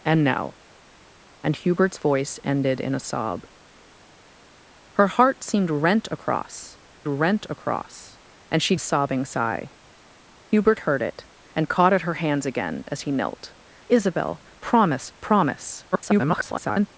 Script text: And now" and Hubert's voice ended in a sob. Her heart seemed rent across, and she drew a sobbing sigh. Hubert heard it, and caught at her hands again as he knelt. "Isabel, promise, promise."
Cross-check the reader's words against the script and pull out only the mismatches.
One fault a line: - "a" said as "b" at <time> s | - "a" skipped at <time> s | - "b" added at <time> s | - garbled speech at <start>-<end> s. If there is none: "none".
- "rent across" added at 7.1 s
- "drew" skipped at 8.8 s
- garbled speech at 15.9-16.9 s